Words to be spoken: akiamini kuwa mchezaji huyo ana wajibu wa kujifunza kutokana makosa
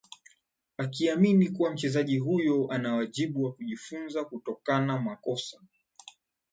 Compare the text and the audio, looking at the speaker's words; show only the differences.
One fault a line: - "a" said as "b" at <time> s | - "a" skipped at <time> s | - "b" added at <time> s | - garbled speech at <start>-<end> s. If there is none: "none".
none